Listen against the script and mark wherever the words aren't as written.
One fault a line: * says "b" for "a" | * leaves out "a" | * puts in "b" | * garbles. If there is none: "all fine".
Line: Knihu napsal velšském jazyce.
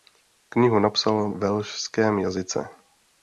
all fine